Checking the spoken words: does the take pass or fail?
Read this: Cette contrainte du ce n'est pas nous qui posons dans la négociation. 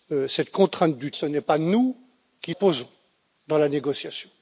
pass